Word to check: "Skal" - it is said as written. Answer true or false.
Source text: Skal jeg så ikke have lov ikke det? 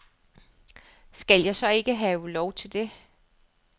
true